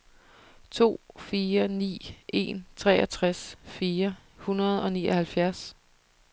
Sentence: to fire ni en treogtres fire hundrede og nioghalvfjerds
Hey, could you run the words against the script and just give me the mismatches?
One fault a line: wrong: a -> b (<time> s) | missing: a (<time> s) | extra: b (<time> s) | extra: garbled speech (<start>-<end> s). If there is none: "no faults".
no faults